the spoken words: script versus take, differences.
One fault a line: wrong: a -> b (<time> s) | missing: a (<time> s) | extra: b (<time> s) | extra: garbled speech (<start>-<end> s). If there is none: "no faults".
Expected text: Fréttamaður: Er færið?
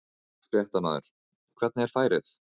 extra: Hvernig (1.6 s)